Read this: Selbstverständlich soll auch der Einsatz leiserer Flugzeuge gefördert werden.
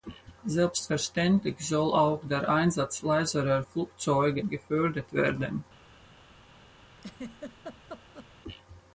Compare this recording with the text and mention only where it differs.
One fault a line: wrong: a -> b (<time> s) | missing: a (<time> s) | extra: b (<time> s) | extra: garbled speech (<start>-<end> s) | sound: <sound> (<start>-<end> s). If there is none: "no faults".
sound: laugh (7.0-8.3 s)